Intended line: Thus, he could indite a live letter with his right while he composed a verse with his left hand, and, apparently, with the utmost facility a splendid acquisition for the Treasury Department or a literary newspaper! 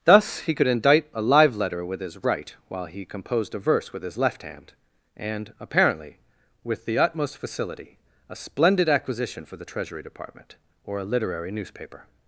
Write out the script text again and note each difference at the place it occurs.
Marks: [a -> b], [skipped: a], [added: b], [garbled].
Thus, he could indite a live letter with his right while he composed a verse with his left hand, and, apparently, with the utmost facility a splendid acquisition for the Treasury Department or a literary newspaper!